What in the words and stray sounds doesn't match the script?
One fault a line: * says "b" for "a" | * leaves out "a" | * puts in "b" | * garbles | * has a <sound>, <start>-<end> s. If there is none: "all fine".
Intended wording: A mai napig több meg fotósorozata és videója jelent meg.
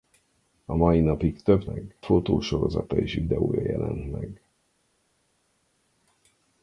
all fine